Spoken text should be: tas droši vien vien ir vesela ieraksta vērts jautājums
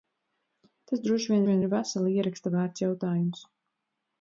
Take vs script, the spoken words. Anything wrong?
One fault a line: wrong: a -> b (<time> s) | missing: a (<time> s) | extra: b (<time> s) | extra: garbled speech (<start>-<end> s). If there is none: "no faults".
no faults